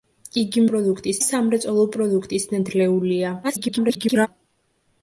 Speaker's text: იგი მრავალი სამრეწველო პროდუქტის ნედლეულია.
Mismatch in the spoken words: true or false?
true